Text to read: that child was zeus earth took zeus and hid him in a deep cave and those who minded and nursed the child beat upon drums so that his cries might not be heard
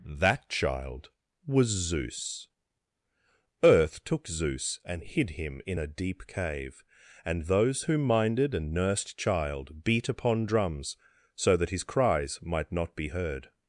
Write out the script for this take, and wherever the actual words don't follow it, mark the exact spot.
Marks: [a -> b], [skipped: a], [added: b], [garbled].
that child was zeus earth took zeus and hid him in a deep cave and those who minded and nursed [skipped: the] child beat upon drums so that his cries might not be heard